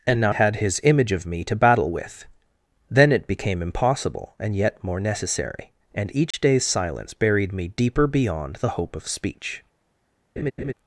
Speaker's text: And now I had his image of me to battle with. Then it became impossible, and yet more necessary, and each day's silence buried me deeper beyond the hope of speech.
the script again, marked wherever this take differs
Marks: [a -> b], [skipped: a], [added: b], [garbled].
And now [skipped: I] had his image of me to battle with. Then it became impossible, and yet more necessary, and each day's silence buried me deeper beyond the hope of speech.